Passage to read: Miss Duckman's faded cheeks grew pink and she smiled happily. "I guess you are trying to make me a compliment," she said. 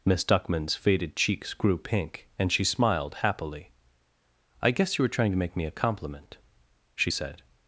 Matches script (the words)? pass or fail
fail